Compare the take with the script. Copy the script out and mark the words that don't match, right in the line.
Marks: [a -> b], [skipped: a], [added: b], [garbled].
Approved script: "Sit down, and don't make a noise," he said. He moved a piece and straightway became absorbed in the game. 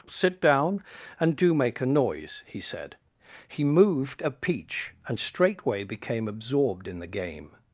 "Sit down, and [don't -> do] make a noise," he said. He moved a [piece -> peach] and straightway became absorbed in the game.